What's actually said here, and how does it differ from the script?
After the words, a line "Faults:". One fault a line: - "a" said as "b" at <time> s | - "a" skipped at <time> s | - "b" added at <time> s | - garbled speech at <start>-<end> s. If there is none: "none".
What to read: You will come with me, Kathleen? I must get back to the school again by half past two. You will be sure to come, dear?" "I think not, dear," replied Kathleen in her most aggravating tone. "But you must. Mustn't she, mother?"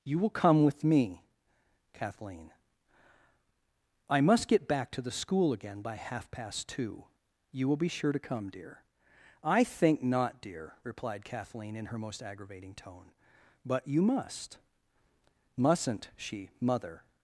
You will come with me, Kathleen? I must get back to the school again by half past two. You will be sure to come, dear?" "I think not, dear," replied Kathleen in her most aggravating tone. "But you must. Mustn't she, mother?"
Faults:
none